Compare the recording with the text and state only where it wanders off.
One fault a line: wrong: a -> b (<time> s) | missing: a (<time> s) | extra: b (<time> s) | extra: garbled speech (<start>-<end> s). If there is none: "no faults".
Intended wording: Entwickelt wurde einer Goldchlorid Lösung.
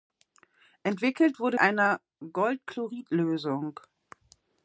no faults